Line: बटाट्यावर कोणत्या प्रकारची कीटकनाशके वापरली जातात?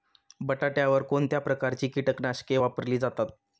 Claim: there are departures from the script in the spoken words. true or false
false